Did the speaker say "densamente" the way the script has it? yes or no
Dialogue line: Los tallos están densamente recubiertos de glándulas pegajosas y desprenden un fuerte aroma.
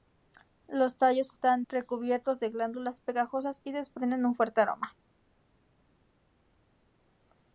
no